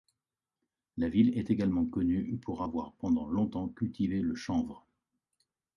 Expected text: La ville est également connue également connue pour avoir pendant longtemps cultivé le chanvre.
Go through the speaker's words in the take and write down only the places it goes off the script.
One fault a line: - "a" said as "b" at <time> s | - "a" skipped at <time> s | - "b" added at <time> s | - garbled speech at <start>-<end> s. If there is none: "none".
- "également connue" skipped at 2.4 s